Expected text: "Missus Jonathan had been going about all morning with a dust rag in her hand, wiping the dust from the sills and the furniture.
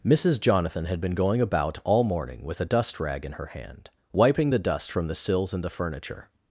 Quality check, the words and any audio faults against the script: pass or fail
pass